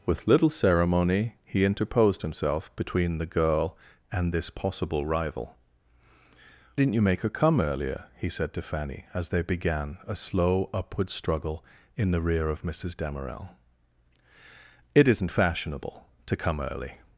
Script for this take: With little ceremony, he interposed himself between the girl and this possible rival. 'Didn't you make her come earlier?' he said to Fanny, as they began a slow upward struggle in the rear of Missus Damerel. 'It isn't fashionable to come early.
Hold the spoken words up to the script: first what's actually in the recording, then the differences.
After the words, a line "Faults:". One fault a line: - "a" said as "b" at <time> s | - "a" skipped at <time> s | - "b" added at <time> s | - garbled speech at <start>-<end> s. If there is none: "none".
With little ceremony, he interposed himself between the girl and this possible rival. 'Didn't you make her come earlier?' he said to Fanny, as they began a slow upward struggle in the rear of Missus Damerel. 'It isn't fashionable to come early.
Faults:
none